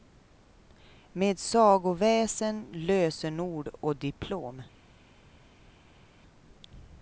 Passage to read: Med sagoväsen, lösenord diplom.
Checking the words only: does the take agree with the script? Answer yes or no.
no